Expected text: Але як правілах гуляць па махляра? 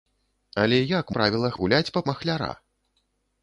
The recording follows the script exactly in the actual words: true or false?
true